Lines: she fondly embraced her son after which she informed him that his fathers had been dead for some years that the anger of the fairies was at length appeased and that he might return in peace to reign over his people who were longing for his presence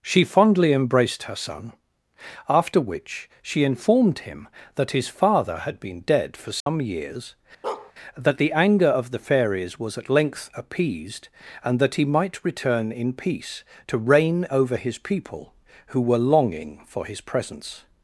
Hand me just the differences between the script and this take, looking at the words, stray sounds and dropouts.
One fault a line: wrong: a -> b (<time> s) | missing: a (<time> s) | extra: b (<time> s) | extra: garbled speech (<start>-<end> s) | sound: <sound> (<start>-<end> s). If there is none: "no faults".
wrong: fathers -> father (5.1 s)
sound: dropout (6.6-6.7 s)
sound: bark (7.6-7.9 s)